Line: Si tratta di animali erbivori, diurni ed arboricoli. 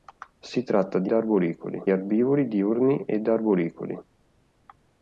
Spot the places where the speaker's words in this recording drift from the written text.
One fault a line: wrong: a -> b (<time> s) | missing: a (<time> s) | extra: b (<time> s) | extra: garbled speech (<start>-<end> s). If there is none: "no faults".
wrong: animali -> arboricoli (1.1 s)